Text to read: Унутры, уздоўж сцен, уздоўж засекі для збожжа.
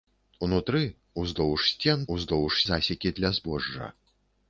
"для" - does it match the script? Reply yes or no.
yes